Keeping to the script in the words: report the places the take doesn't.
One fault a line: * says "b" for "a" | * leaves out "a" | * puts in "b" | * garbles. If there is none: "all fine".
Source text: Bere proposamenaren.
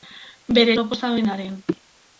all fine